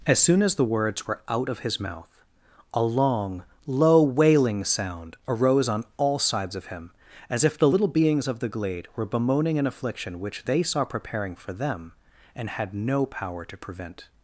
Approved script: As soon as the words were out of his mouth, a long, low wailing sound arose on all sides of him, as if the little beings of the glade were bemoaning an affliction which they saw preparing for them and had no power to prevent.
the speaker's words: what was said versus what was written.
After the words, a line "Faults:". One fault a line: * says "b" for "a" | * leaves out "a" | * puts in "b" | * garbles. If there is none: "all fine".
As soon as the words were out of his mouth, a long, low wailing sound arose on all sides of him, as if the little beings of the glade were bemoaning an affliction which they saw preparing for them and had no power to prevent.
Faults:
all fine